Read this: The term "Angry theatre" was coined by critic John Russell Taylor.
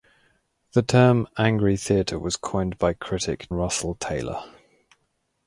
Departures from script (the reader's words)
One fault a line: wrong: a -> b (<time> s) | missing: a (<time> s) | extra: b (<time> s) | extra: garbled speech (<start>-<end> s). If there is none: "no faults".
missing: John (3.5 s)